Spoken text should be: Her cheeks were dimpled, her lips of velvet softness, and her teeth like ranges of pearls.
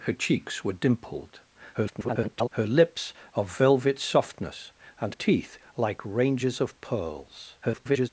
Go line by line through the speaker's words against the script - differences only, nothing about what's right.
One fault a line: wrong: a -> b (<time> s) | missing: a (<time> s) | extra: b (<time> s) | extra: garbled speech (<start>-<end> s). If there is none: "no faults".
extra: garbled speech (1.7-2.5 s)
missing: her (5.2 s)
extra: garbled speech (7.6-8.1 s)